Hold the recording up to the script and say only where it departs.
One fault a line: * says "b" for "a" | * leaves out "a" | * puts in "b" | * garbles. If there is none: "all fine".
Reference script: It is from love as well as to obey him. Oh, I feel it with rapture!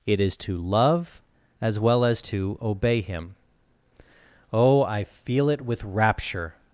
* says "to" for "from"